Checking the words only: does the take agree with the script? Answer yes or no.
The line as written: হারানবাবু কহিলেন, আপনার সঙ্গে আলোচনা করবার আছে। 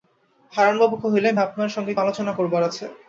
yes